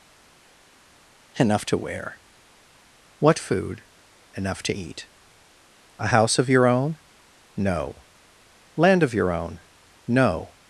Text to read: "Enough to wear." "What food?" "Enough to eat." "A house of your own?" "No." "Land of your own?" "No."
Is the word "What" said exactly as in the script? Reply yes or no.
yes